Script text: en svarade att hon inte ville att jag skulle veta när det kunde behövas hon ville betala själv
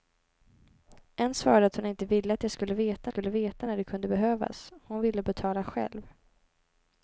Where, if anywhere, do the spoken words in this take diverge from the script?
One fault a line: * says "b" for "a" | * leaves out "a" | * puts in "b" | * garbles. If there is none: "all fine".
* puts in "skulle veta"